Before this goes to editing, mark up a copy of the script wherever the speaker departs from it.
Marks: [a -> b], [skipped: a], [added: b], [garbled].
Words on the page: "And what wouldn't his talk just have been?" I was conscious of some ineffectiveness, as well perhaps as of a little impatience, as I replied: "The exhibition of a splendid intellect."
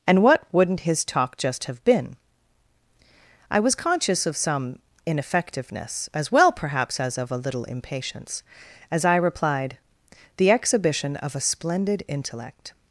"And what wouldn't his talk just have been?" I was conscious of some ineffectiveness, as well perhaps as of a little impatience, as I replied: "The exhibition of a splendid intellect."